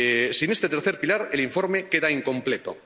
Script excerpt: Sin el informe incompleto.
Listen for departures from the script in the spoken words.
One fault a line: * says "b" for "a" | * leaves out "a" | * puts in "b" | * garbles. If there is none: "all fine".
* puts in "este tercer pilar"
* puts in "queda"